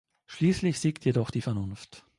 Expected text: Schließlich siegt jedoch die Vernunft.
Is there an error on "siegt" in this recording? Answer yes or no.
no